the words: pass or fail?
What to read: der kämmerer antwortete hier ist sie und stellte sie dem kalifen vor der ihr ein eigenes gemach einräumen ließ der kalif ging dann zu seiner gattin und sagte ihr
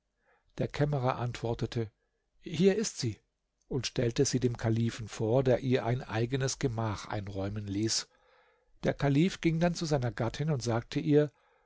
pass